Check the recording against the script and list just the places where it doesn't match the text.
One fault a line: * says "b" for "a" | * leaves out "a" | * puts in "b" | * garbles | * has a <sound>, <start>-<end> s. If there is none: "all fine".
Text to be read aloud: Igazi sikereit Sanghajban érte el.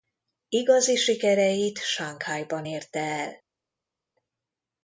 all fine